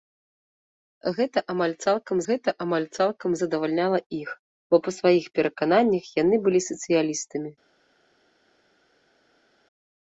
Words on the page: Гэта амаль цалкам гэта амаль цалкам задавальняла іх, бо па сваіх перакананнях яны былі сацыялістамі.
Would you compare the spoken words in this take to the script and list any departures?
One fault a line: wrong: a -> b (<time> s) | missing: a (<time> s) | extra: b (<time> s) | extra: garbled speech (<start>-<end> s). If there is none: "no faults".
no faults